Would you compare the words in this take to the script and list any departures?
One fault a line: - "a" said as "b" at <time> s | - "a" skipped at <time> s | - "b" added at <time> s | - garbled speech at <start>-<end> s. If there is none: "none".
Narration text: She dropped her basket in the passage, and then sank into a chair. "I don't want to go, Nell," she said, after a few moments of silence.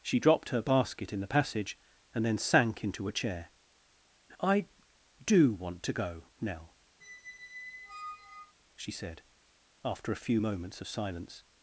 - "don't" said as "do" at 5.2 s